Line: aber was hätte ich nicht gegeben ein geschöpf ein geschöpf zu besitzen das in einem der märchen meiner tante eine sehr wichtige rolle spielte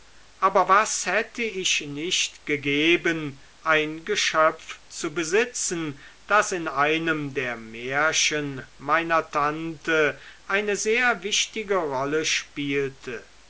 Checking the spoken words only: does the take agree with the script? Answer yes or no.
no